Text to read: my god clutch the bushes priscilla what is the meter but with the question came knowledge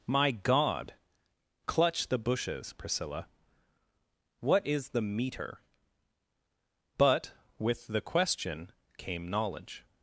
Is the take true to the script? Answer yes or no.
yes